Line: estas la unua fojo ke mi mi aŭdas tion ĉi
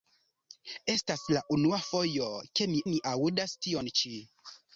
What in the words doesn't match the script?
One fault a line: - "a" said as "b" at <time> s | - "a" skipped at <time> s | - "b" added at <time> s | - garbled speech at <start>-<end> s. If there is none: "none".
none